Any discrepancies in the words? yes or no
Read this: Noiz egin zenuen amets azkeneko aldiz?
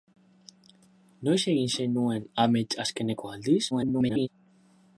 yes